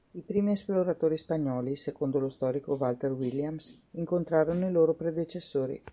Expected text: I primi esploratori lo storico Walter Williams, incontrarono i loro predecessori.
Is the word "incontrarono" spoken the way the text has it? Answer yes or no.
yes